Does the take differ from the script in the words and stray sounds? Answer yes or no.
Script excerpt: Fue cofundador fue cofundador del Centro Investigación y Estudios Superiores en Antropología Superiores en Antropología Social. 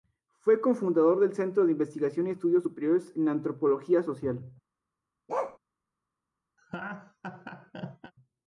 yes